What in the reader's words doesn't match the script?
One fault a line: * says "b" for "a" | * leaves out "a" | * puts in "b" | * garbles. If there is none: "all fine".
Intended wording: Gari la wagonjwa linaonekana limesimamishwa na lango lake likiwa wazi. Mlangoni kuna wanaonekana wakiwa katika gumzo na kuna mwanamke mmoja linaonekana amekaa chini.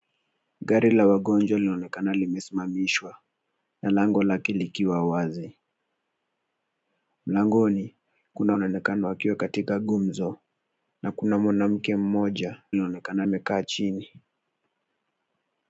all fine